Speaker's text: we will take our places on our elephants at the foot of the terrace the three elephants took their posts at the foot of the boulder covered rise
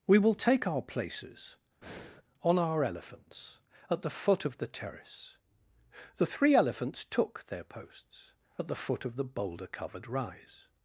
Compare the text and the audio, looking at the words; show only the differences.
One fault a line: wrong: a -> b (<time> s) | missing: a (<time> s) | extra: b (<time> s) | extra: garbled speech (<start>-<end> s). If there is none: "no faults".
no faults